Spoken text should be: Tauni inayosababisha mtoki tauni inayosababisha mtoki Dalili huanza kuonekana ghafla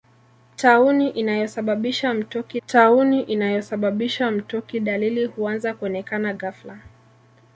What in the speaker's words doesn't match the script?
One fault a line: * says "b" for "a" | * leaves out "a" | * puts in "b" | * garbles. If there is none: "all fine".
all fine